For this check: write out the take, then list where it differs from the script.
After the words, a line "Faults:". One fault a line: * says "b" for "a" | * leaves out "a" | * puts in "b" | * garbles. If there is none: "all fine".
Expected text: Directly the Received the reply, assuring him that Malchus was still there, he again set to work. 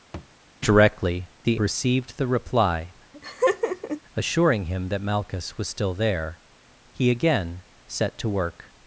Directly the Received the reply, assuring him that Malchus was still there, he again set to work.
Faults:
all fine